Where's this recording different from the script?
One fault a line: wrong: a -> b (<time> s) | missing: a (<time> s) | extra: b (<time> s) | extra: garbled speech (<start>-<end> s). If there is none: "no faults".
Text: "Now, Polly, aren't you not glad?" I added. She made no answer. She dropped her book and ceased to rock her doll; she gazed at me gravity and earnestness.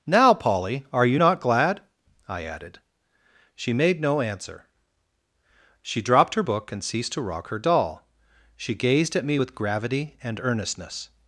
wrong: aren't -> are (0.9 s)
extra: with (9.4 s)